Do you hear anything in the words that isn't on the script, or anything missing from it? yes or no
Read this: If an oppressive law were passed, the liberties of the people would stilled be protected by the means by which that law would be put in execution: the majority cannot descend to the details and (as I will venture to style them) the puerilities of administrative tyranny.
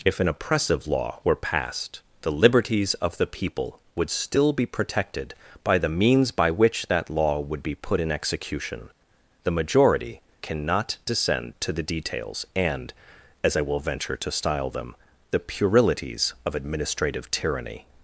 yes